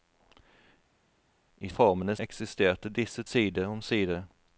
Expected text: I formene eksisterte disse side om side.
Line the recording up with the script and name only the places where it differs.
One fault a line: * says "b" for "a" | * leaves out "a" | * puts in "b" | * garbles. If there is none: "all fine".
all fine